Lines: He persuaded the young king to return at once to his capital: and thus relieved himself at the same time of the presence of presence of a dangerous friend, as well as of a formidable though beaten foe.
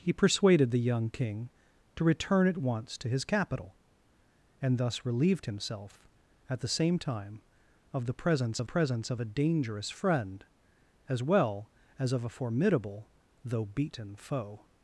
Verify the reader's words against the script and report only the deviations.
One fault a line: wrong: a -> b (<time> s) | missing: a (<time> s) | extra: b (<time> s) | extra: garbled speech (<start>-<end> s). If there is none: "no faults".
no faults